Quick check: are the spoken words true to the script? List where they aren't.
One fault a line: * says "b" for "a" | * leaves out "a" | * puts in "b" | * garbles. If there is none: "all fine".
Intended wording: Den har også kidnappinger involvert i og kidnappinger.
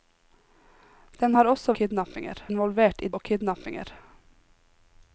all fine